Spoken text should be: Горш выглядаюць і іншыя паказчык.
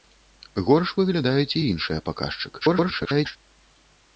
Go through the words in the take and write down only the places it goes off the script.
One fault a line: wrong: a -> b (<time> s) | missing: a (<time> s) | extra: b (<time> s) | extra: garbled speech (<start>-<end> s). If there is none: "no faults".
extra: garbled speech (2.6-3.4 s)